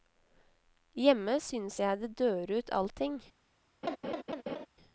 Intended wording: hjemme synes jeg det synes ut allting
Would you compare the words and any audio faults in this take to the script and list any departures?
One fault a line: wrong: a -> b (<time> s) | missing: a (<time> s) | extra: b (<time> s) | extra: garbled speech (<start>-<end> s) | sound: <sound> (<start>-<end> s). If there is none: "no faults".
wrong: synes -> dør (2.2 s)
sound: laugh (3.8-4.7 s)